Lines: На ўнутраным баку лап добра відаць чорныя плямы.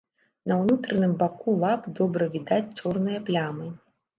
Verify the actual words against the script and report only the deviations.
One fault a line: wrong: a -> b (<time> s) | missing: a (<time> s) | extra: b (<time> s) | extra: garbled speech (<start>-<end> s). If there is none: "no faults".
no faults